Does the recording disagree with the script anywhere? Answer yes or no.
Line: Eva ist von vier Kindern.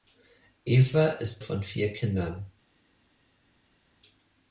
no